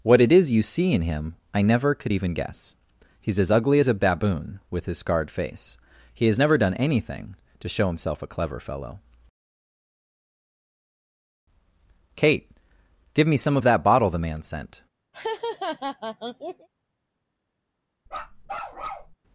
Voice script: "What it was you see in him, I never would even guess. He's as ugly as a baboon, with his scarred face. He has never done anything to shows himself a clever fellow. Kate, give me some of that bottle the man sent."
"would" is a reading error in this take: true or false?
true